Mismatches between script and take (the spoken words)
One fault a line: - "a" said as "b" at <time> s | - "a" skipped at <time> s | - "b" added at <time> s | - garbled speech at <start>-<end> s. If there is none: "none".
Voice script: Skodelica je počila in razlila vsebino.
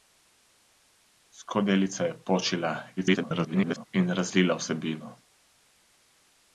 - garbled speech at 3.0-3.9 s